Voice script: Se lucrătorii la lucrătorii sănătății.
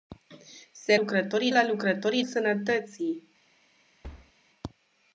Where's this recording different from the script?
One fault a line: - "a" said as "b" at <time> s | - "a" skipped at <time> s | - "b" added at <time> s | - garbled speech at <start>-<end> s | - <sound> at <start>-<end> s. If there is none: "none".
- thud at 4.0-4.3 s